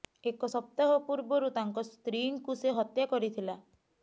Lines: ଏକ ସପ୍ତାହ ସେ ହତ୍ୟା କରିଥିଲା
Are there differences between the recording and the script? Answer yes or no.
yes